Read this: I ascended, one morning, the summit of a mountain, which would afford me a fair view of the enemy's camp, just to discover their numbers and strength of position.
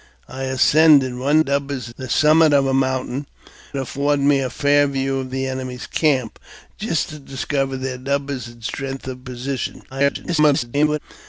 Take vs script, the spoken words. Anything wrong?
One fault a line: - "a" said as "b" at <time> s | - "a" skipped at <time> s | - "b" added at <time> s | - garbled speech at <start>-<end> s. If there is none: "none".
- "morning" said as "numbers" at 1.4 s
- "which would" skipped at 3.3 s
- garbled speech at 9.9-11.0 s